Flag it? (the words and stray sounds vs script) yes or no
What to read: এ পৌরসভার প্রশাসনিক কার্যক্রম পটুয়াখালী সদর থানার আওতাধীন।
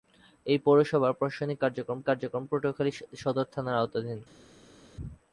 yes